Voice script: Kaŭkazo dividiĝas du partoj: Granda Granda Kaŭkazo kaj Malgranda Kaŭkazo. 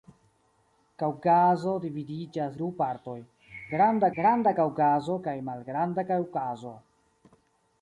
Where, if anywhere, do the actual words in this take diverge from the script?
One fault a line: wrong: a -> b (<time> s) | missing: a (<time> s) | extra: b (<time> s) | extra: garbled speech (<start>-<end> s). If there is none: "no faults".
no faults